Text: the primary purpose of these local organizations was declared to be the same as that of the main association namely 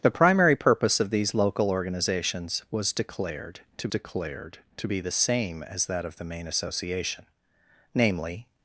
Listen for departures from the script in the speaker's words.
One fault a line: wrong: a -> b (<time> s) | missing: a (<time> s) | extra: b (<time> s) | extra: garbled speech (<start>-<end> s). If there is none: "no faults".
extra: declared to (3.9 s)